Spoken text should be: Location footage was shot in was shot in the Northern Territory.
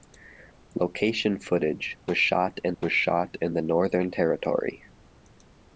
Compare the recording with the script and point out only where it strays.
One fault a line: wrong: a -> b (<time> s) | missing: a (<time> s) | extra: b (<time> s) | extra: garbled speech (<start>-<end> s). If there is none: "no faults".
no faults